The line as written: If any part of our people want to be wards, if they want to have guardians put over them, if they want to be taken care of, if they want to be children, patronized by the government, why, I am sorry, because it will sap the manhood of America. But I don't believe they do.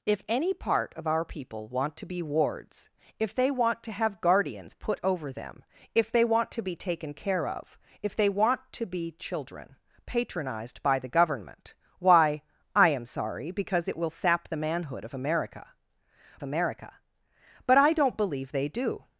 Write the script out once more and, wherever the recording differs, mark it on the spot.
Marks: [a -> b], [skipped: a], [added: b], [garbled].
If any part of our people want to be wards, if they want to have guardians put over them, if they want to be taken care of, if they want to be children, patronized by the government, why, I am sorry, because it will sap the manhood of America. [added: America] But I don't believe they do.